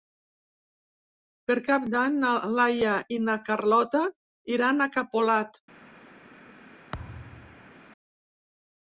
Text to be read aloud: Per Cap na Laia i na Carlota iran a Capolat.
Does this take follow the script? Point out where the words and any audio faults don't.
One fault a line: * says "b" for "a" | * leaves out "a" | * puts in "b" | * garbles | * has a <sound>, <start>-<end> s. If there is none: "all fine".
* puts in "d'Any"
* has a thud, 6.9-7.7 s